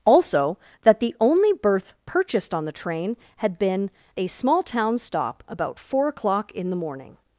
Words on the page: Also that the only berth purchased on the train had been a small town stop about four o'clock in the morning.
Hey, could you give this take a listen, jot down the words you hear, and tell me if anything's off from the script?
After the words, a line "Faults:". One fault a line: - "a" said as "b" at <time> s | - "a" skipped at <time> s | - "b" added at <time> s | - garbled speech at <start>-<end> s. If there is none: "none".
Also that the only berth purchased on the train had been a small town stop about four o'clock in the morning.
Faults:
none